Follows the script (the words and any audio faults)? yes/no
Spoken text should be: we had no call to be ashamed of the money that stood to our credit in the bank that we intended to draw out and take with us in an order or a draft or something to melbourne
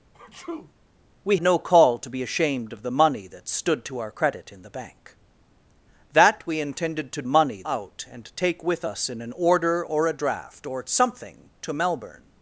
no